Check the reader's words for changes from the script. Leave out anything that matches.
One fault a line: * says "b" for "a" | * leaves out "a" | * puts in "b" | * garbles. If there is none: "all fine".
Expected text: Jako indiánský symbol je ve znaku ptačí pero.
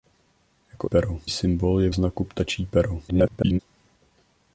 * says "pero" for "indiánský"
* leaves out "ve"
* garbles